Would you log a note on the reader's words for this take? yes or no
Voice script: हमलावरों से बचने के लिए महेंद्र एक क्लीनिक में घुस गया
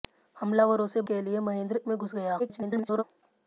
yes